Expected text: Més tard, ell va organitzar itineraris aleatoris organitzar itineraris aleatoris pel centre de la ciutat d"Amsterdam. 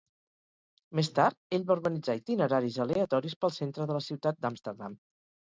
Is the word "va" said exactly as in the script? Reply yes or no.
yes